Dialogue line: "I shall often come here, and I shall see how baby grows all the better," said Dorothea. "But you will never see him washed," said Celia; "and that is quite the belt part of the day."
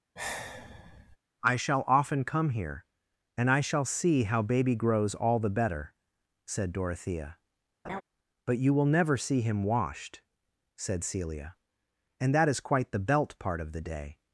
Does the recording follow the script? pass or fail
pass